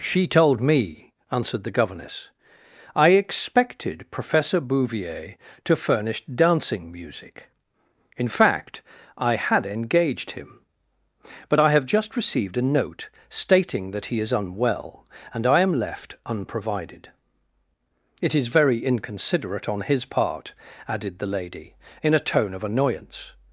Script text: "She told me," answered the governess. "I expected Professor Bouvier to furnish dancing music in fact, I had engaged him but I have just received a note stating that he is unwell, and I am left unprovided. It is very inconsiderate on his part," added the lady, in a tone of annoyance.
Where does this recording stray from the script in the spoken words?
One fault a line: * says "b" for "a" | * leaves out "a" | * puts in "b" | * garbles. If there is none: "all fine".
all fine